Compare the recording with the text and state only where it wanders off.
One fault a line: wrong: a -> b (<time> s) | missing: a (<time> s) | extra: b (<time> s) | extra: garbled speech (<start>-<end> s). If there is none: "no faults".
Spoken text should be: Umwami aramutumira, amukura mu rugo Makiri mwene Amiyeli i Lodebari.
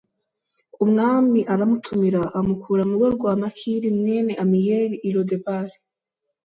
extra: rwa (3.2 s)